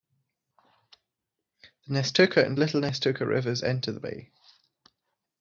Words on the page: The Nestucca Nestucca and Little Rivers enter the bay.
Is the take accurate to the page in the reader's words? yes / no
no